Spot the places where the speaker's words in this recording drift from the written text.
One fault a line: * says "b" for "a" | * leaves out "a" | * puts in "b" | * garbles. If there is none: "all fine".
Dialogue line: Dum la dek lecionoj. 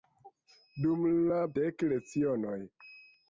all fine